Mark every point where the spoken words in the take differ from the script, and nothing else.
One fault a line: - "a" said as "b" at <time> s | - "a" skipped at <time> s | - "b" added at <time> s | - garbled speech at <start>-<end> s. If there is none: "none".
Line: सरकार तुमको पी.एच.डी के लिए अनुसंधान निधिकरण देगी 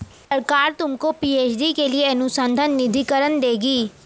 none